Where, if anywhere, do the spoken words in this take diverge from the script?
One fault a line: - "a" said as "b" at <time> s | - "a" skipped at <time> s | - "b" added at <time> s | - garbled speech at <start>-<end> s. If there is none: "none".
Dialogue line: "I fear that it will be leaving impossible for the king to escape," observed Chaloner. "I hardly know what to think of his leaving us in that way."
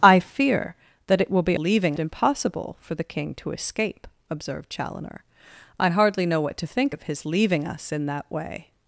none